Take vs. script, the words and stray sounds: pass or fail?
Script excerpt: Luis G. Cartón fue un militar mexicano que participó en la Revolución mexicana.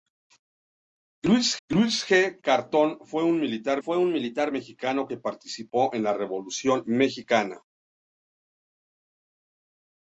fail